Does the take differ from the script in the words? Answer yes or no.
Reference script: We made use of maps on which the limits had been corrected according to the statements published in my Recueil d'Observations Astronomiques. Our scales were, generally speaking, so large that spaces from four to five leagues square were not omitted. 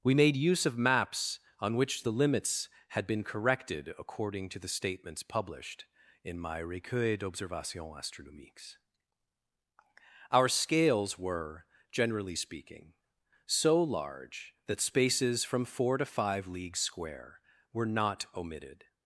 no